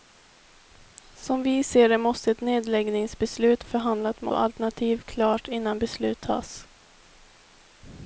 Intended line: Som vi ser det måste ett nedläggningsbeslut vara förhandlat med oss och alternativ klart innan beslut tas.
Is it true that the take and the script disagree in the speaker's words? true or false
true